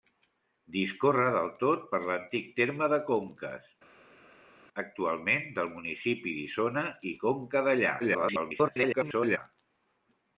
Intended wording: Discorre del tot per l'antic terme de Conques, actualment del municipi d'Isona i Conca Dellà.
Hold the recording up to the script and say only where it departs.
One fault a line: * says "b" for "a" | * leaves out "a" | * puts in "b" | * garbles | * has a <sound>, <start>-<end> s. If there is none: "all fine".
* garbles